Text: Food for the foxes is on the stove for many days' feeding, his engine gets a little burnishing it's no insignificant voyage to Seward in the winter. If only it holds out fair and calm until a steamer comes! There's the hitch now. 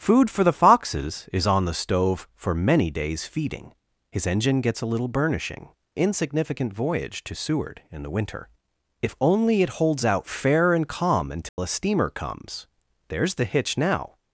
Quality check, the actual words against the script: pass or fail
fail